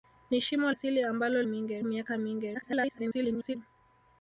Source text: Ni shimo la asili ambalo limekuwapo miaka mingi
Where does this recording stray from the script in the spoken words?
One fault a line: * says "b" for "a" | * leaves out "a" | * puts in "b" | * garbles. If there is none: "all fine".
* leaves out "la"
* says "mingi" for "limekuwapo"
* garbles